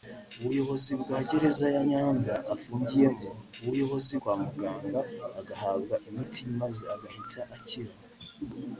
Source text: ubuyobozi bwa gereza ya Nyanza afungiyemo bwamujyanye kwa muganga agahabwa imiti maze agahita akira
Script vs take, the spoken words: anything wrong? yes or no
yes